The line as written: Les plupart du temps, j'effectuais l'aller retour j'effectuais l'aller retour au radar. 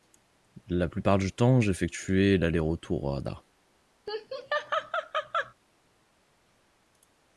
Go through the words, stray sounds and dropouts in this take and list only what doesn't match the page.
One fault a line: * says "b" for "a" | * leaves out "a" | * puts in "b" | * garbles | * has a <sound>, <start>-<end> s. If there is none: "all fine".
* says "La" for "Les"
* leaves out "j'effectuais l'aller retour"
* has a laugh, 4.1-5.5 s